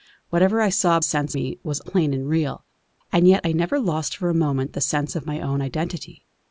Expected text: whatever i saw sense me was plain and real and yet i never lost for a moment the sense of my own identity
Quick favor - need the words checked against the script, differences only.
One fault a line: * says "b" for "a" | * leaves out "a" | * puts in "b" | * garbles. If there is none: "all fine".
all fine